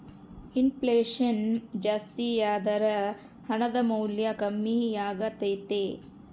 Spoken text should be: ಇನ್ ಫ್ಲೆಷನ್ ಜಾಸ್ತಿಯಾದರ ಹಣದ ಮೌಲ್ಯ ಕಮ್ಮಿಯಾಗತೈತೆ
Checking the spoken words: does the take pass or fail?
pass